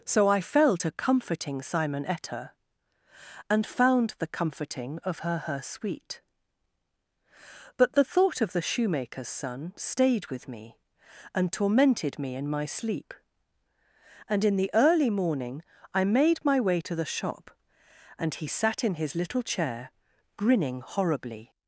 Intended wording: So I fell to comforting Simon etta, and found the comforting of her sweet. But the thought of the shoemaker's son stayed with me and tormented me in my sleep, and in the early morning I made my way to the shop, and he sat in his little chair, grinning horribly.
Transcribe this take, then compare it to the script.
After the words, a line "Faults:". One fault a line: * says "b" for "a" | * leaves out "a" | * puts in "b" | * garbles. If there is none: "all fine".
So I fell to comforting Simon etta, and found the comforting of her her sweet. But the thought of the shoemaker's son stayed with me and tormented me in my sleep, and in the early morning I made my way to the shop, and he sat in his little chair, grinning horribly.
Faults:
* puts in "her"